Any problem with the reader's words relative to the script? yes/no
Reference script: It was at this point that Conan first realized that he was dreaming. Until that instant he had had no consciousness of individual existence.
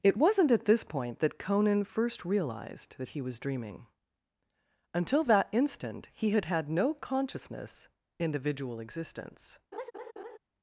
yes